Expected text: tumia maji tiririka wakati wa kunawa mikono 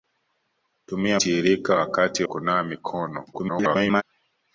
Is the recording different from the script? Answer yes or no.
yes